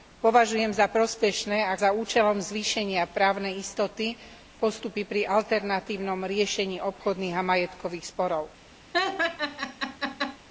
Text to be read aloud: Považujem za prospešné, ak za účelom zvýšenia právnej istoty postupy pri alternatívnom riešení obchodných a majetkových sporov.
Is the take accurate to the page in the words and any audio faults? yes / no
no